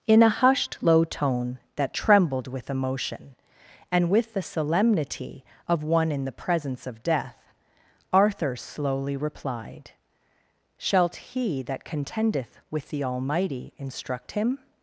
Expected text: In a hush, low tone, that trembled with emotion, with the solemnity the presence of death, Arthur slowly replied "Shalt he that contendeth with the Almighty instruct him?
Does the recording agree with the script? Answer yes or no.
no